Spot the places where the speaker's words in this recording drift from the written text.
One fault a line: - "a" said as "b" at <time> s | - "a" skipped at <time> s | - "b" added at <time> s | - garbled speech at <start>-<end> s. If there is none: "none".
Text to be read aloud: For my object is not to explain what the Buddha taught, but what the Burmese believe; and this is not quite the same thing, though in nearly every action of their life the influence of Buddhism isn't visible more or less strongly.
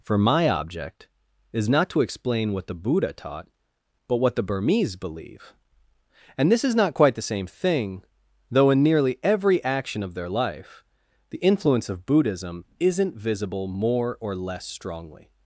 none